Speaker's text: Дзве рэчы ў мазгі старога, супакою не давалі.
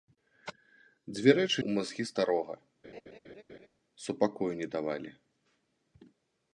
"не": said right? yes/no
yes